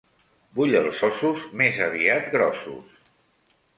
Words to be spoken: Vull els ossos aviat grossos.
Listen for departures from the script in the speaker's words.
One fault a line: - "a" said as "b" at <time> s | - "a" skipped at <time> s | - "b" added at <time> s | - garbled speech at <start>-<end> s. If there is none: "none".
- "més" added at 1.6 s